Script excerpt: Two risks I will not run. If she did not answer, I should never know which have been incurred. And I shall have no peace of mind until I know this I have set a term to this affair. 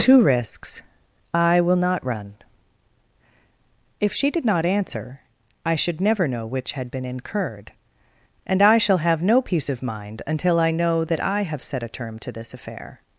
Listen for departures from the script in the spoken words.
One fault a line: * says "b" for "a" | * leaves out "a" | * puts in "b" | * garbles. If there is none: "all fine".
* says "had" for "have"
* says "that" for "this"